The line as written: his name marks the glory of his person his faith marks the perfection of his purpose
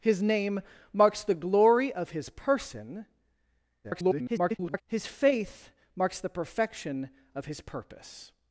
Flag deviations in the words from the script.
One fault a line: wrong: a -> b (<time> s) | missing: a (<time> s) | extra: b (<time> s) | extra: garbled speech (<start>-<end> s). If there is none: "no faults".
extra: garbled speech (3.8-4.8 s)